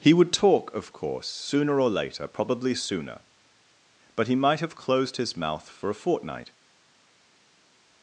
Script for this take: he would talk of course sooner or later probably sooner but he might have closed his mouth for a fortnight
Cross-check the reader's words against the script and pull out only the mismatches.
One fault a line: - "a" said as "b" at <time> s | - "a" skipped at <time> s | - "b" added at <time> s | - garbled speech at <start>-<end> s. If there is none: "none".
none